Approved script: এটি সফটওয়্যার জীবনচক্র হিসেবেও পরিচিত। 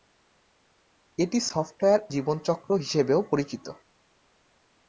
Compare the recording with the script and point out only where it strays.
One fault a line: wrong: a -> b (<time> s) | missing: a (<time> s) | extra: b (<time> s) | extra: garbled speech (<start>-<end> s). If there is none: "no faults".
no faults